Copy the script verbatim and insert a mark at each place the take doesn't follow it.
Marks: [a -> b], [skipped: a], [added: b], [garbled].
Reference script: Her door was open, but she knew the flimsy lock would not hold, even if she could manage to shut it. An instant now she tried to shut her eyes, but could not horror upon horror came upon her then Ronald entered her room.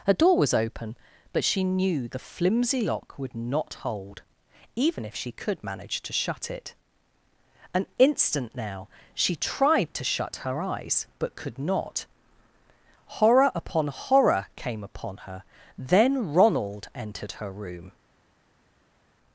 Her door was open, but she knew the flimsy lock would not hold, even if she could manage to shut it. An instant now she tried to shut her eyes, but could not horror upon horror came upon her then Ronald entered her room.